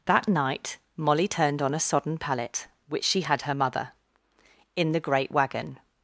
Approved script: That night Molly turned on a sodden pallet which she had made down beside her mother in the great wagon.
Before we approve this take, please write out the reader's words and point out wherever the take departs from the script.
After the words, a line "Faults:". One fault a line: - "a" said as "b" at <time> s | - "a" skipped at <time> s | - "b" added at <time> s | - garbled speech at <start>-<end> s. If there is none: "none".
That night Molly turned on a sodden pallet which she had her mother in the great wagon.
Faults:
- "made down beside" skipped at 3.4 s